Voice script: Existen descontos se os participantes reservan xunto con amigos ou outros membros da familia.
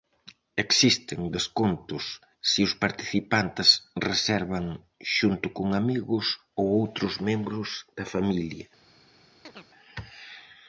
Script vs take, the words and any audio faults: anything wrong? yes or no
yes